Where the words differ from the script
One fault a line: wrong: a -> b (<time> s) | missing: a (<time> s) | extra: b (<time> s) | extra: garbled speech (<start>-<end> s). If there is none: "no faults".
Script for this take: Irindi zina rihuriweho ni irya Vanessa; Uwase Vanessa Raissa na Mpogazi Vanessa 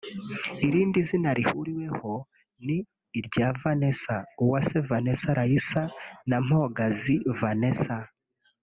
no faults